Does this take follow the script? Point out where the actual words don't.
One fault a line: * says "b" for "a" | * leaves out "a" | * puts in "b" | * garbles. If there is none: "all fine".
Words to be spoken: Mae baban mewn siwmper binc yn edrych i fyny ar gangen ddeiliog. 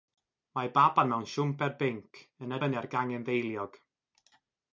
* leaves out "edrych"